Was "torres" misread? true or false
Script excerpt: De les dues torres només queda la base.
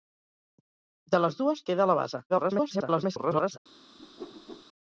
true